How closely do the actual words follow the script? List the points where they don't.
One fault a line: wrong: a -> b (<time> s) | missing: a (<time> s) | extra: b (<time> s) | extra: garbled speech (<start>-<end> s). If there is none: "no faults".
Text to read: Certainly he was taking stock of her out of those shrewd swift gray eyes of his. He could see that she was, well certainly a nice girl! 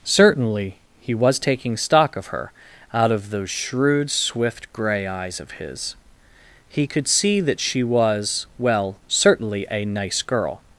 no faults